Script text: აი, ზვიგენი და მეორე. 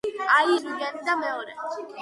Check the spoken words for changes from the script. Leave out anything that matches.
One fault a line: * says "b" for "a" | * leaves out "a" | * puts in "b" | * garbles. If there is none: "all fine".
all fine